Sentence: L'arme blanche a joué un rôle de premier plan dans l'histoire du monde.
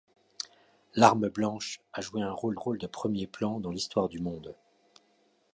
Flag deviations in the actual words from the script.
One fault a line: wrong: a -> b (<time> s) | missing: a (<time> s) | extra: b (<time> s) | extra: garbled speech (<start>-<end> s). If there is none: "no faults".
extra: rôle (2.5 s)